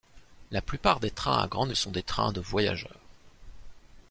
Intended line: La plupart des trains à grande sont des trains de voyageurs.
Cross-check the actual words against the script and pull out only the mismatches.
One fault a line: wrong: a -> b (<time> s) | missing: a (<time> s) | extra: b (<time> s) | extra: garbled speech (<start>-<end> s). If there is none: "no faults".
no faults